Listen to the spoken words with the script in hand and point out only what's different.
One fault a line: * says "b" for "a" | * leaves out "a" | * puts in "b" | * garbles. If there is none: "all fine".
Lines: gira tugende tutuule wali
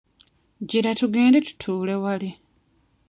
all fine